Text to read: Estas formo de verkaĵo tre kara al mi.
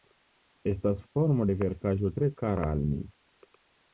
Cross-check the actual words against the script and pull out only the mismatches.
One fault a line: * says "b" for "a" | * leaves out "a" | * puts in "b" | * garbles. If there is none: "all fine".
all fine